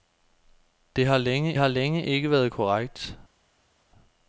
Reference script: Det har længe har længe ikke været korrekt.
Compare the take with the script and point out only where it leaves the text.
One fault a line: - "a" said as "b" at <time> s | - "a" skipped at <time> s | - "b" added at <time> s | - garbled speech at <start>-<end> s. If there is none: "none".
none